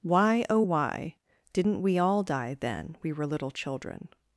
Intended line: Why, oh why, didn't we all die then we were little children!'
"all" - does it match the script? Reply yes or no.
yes